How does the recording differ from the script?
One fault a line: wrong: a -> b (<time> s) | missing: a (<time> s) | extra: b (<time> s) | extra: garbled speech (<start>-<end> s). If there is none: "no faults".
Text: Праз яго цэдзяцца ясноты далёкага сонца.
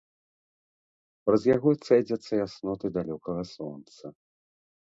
no faults